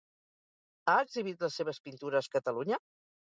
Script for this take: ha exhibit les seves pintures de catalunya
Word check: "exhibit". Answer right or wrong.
right